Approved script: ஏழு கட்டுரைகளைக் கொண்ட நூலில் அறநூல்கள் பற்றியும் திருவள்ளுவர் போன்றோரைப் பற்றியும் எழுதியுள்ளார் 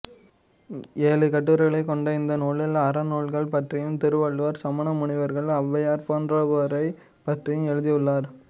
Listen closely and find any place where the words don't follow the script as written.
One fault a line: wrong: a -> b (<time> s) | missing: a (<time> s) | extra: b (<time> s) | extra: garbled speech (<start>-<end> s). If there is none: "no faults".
extra: இந்த (2.1 s)
extra: சமண முனிவர்கள் ஔவையார் (4.6 s)